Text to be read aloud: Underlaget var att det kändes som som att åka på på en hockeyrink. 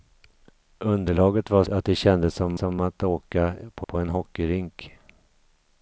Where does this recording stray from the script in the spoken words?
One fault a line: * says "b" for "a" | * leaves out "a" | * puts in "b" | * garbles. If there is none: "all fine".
all fine